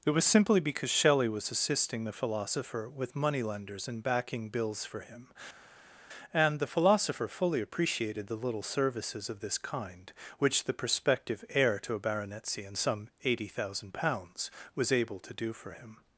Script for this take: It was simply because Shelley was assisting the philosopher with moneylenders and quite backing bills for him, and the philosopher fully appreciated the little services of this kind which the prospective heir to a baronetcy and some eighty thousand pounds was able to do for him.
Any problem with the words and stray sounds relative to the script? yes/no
yes